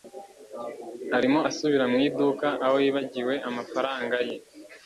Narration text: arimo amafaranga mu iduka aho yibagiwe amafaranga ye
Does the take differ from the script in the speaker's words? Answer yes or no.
yes